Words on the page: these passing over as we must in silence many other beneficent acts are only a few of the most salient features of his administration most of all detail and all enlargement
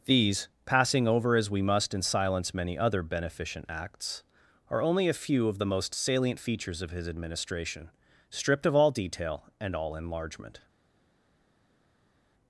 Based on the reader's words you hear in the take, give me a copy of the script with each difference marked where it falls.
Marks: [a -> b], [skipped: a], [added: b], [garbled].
these passing over as we must in silence many other beneficent acts are only a few of the most salient features of his administration [most -> stripped] of all detail and all enlargement